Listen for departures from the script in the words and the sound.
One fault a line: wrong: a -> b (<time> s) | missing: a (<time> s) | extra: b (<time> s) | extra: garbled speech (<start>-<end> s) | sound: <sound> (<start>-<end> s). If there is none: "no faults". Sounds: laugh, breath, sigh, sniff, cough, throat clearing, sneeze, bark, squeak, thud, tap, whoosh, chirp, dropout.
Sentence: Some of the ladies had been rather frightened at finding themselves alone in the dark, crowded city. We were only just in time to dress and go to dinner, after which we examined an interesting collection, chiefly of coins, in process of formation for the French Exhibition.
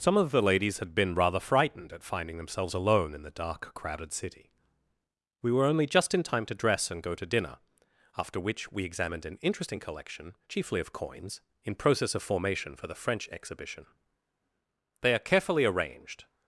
extra: They are carefully arranged (15.0 s)